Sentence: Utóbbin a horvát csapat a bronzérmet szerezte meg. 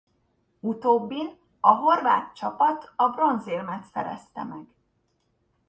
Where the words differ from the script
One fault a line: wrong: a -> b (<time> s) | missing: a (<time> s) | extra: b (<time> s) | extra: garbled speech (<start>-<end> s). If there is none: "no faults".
no faults